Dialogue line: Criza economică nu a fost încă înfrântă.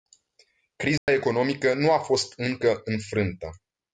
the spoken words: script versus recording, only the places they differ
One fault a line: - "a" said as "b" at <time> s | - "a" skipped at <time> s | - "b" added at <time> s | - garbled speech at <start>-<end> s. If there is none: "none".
none